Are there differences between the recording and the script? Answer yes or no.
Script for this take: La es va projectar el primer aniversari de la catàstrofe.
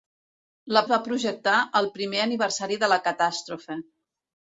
no